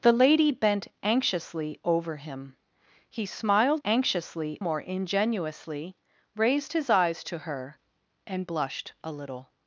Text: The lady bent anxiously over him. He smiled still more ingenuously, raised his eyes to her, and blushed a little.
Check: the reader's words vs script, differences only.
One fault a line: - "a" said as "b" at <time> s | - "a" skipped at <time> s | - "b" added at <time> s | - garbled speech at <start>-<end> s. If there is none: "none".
- "still" said as "anxiously" at 3.8 s